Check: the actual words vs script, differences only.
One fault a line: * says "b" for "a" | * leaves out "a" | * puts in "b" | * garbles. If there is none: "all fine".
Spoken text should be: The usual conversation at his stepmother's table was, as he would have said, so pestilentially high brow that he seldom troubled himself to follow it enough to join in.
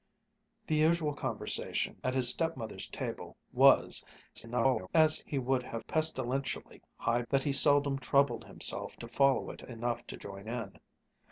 * garbles
* leaves out "said so"
* leaves out "brow"